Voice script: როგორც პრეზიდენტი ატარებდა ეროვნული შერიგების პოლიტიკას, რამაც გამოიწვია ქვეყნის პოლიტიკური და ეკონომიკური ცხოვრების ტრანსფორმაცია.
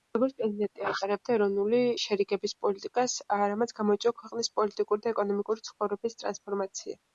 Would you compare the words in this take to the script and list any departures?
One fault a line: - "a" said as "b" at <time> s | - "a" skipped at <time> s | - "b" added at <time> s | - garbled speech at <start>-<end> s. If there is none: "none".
none